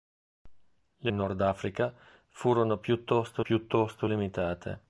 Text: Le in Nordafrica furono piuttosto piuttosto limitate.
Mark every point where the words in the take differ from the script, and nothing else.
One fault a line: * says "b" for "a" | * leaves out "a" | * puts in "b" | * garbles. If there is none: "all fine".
all fine